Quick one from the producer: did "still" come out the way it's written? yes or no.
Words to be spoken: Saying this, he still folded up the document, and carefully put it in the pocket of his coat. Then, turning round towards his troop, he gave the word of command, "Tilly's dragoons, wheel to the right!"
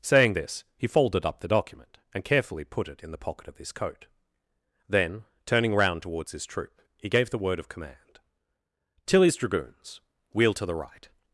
no